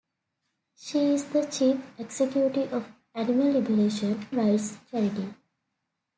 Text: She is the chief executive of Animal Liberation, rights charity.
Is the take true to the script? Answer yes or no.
yes